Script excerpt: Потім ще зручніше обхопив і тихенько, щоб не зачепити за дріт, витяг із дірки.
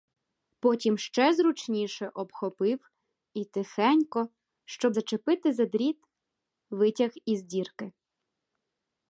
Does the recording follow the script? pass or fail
fail